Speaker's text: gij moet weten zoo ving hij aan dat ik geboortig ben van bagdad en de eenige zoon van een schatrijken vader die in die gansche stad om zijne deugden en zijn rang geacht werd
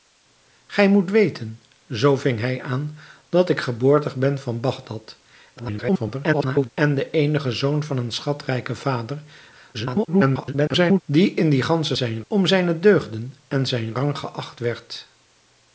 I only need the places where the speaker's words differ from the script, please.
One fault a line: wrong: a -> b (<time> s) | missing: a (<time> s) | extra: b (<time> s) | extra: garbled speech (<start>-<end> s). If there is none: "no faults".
extra: garbled speech (5.6-6.7 s)
extra: garbled speech (9.7-11.0 s)
wrong: stad -> zijn (11.9 s)